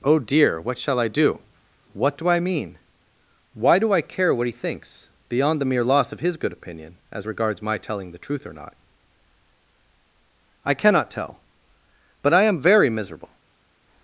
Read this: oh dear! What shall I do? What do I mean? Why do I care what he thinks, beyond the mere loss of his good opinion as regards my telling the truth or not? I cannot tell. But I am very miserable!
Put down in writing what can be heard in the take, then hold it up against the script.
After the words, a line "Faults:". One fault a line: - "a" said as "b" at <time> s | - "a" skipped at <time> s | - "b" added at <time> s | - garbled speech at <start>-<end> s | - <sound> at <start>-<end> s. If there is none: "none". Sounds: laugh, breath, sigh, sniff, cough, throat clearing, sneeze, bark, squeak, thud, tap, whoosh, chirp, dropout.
oh dear! What shall I do? What do I mean? Why do I care what he thinks, beyond the mere loss of his good opinion as regards my telling the truth or not? I cannot tell. But I am very miserable!
Faults:
none